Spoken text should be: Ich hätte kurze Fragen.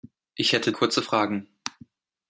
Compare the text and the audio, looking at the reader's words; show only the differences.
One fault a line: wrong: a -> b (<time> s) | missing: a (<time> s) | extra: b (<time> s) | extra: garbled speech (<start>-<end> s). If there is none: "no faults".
no faults